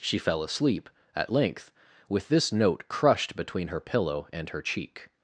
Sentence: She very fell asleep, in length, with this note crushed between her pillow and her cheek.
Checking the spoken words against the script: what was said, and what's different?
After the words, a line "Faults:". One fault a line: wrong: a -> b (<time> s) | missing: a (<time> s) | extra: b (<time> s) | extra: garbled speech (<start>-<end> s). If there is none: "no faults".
She fell asleep, at length, with this note crushed between her pillow and her cheek.
Faults:
missing: very (0.2 s)
wrong: in -> at (1.1 s)